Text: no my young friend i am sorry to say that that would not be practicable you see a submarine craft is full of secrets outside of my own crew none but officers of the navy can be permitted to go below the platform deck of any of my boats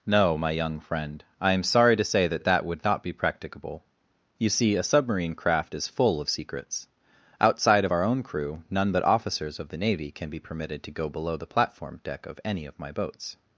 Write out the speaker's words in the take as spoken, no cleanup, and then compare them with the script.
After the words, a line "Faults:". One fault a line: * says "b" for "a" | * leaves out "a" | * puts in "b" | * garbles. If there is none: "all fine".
no my young friend i am sorry to say that that would not be practicable you see a submarine craft is full of secrets outside of our own crew none but officers of the navy can be permitted to go below the platform deck of any of my boats
Faults:
* says "our" for "my"